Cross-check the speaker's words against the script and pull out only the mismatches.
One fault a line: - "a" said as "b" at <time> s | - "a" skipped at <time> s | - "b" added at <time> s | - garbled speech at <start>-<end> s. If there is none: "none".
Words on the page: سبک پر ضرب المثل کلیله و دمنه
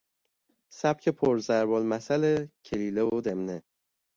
none